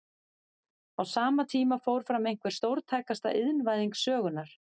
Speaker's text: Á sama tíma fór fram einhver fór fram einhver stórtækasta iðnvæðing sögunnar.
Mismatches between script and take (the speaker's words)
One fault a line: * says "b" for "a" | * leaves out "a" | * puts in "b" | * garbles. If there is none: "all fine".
* leaves out "fór fram einhver"